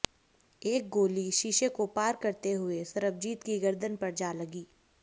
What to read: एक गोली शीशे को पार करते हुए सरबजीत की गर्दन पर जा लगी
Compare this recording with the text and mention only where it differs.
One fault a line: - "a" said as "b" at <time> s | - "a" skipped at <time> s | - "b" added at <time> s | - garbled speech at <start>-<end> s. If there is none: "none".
none